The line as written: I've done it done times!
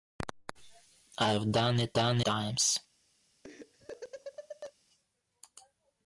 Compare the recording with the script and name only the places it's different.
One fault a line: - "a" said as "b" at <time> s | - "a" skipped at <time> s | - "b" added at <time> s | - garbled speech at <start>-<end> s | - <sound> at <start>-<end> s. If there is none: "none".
- laugh at 3.4-4.7 s